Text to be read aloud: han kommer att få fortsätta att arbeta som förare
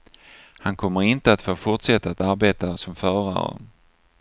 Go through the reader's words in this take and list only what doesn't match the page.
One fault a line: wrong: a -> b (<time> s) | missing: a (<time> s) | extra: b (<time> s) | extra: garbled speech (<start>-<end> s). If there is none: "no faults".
extra: inte (1.0 s)